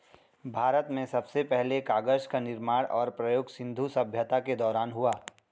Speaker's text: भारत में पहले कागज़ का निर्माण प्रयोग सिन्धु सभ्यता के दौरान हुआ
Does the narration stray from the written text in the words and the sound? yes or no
yes